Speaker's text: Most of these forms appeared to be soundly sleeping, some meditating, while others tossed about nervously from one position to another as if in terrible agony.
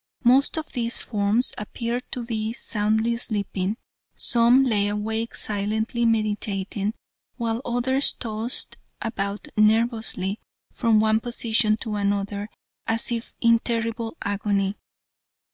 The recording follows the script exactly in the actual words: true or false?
false